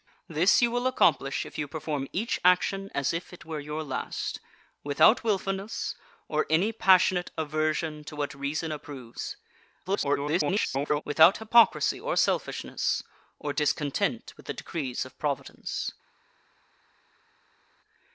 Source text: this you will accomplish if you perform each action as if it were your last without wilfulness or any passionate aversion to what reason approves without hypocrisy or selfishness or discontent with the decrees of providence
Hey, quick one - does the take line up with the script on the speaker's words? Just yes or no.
no